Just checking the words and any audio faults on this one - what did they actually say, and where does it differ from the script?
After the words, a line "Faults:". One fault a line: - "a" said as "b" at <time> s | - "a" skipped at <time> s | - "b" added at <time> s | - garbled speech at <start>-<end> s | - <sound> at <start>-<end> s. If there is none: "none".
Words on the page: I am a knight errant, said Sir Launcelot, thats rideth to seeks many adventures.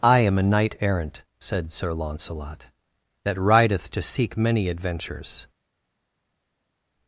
I am a knight errant, said Sir Launcelot, that rideth to seek many adventures.
Faults:
- "thats" said as "that" at 3.2 s
- "seeks" said as "seek" at 4.0 s